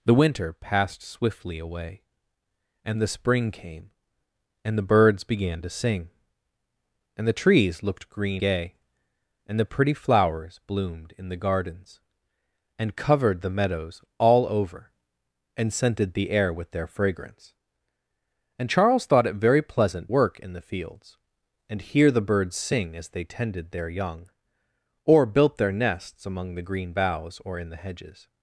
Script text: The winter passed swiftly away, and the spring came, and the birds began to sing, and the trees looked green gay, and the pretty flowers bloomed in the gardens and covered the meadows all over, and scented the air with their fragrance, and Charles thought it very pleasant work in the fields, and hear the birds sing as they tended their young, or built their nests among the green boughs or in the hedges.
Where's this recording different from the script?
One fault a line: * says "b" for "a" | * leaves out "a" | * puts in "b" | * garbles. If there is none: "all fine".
all fine